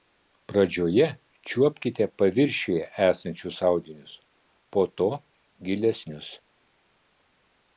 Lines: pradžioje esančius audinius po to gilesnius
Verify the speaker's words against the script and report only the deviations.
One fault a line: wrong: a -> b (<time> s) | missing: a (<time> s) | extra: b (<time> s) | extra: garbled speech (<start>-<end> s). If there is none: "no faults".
extra: čiuopkite paviršiuje (1.5 s)